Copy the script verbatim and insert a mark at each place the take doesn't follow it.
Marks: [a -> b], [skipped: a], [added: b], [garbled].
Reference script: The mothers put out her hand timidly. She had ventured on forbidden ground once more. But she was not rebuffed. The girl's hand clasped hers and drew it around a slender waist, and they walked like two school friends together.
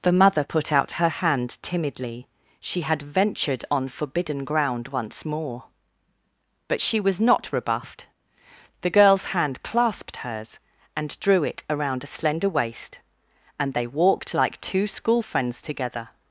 The [mothers -> mother] put out her hand timidly. She had ventured on forbidden ground once more. But she was not rebuffed. The girl's hand clasped hers and drew it around a slender waist, and they walked like two school friends together.